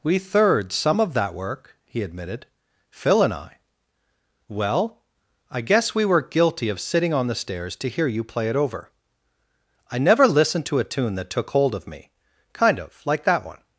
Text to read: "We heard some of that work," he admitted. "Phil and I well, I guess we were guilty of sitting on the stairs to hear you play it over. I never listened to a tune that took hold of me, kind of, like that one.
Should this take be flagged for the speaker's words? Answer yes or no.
yes